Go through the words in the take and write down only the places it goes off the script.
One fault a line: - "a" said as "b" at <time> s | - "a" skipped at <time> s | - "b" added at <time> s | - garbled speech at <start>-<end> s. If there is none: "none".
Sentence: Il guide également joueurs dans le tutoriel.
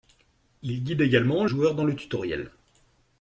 none